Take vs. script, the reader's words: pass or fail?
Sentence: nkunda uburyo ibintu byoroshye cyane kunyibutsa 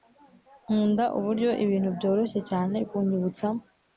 pass